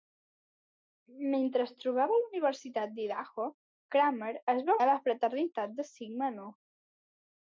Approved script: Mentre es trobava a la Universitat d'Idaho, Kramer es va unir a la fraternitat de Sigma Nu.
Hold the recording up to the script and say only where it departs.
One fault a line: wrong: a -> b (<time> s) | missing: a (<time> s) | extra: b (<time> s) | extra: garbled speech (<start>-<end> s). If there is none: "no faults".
missing: unir (4.8 s)